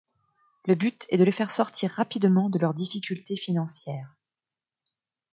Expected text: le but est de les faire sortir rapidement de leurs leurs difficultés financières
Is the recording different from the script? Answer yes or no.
yes